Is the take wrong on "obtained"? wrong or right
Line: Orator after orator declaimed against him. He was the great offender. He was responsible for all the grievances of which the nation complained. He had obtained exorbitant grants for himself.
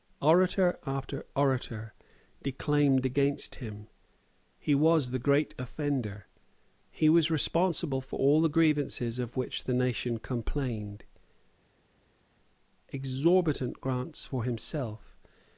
wrong